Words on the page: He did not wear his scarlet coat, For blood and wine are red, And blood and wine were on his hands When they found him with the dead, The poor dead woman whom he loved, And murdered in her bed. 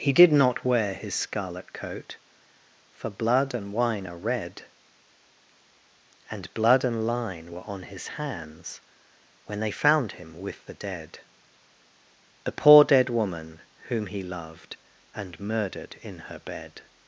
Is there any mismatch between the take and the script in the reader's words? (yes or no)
yes